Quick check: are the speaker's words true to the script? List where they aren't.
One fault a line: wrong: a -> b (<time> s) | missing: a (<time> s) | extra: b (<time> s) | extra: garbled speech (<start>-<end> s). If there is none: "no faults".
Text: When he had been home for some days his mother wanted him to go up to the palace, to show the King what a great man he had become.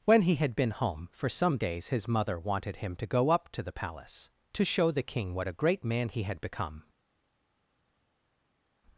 no faults